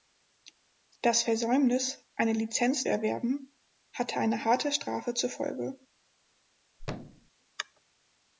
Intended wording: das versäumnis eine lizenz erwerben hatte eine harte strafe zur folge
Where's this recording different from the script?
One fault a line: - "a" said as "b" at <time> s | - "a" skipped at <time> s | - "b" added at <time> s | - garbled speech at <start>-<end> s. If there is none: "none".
none